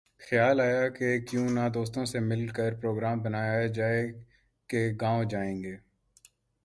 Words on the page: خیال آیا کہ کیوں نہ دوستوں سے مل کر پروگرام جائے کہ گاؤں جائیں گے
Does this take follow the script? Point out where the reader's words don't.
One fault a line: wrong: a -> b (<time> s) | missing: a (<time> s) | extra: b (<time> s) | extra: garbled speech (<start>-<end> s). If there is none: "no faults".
extra: بنایا (3.2 s)